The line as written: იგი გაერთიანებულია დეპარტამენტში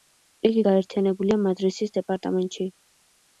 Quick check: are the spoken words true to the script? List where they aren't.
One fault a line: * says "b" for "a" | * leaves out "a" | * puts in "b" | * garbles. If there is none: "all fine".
* puts in "მადრისის"